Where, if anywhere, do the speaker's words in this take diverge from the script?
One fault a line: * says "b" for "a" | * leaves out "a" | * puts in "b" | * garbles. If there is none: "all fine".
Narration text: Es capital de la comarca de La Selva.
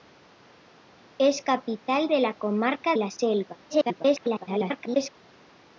* leaves out "de"
* garbles